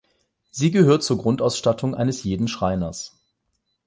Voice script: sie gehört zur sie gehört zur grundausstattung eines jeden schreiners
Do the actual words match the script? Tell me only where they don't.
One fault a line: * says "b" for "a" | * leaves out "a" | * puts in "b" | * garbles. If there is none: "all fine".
* leaves out "sie gehört zur"